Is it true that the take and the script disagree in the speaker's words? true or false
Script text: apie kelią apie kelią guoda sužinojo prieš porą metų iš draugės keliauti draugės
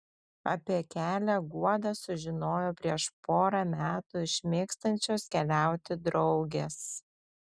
true